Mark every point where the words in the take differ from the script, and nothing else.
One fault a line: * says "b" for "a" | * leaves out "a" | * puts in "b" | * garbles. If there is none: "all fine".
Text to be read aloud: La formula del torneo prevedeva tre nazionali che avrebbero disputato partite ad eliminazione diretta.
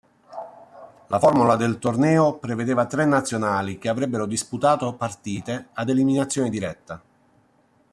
all fine